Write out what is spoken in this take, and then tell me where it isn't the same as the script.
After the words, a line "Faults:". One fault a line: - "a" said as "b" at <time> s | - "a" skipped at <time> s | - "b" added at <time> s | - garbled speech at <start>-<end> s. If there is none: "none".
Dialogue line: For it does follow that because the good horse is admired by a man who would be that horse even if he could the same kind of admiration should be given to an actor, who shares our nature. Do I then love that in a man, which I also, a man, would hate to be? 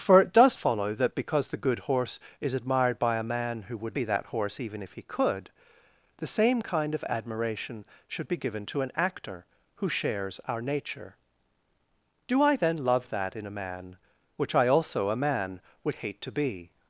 For it does follow that because the good horse is admired by a man who would be that horse even if he could the same kind of admiration should be given to an actor, who shares our nature. Do I then love that in a man, which I also, a man, would hate to be?
Faults:
none